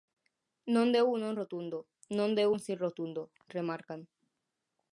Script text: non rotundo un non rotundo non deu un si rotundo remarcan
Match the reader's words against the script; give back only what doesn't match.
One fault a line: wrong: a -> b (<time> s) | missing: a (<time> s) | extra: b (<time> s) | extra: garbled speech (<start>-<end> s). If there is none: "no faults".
wrong: rotundo -> deu (0.9 s)